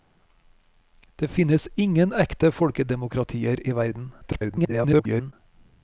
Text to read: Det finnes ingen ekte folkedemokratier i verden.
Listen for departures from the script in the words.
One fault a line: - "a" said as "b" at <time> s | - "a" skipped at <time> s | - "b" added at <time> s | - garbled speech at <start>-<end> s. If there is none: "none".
- garbled speech at 4.2-5.3 s